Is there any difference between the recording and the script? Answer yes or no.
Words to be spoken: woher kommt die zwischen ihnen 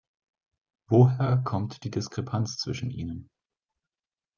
yes